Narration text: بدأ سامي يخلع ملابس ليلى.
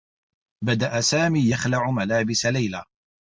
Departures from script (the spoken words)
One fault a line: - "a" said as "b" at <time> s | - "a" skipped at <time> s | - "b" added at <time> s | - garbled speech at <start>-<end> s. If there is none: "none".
none